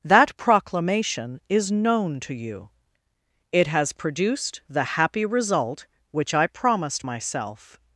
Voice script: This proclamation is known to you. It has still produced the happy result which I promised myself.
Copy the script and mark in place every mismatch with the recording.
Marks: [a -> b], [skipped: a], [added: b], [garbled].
[This -> That] proclamation is known to you. It has [skipped: still] produced the happy result which I promised myself.